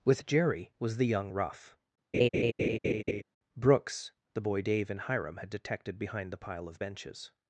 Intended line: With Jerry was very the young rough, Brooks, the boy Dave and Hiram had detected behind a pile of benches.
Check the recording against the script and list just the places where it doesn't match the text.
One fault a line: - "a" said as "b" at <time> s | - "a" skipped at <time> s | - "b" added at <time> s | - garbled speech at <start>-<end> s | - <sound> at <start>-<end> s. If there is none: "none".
- "very" skipped at 1.0 s
- laugh at 2.1-3.2 s
- "a" said as "the" at 6.3 s